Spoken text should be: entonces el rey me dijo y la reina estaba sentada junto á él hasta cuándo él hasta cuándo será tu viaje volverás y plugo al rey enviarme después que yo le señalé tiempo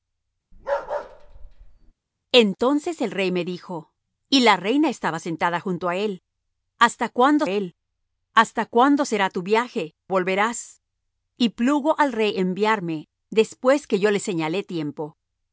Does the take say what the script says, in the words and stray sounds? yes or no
no